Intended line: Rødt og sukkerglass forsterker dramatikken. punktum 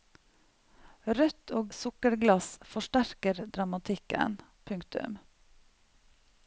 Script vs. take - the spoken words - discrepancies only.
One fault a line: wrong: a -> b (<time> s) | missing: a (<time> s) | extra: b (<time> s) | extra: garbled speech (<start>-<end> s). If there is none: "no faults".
no faults